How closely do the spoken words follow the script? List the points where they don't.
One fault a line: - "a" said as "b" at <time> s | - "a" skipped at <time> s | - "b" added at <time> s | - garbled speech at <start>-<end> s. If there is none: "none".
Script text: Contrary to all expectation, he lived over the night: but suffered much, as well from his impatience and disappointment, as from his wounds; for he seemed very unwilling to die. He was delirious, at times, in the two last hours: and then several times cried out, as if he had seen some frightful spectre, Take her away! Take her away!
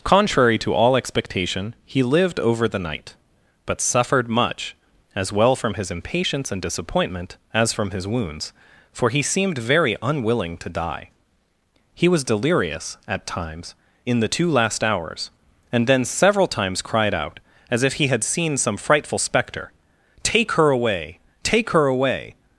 none